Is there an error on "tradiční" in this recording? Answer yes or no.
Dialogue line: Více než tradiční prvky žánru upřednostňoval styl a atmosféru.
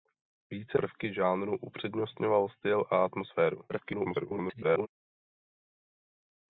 yes